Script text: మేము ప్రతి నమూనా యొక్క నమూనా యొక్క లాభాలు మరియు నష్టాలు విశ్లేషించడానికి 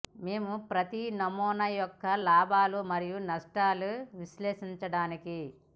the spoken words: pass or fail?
fail